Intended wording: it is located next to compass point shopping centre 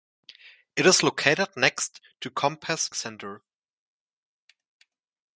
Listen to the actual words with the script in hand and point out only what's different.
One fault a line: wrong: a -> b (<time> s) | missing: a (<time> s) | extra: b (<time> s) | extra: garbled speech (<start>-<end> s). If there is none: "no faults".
missing: point shopping (2.9 s)